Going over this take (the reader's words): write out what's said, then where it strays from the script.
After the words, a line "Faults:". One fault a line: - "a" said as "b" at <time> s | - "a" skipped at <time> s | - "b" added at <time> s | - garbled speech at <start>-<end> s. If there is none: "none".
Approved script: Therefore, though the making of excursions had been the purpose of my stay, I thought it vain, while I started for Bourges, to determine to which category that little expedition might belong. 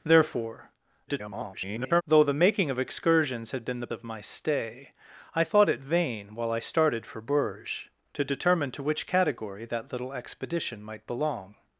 Therefore, [garbled] though the making of excursions had been the of my stay, I thought it vain, while I started for Bourges, to determine to which category that little expedition might belong.
Faults:
- garbled speech at 1.1-2.0 s
- "purpose" skipped at 3.9 s